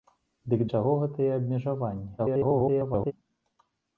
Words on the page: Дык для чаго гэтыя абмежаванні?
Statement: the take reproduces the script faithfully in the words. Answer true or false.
false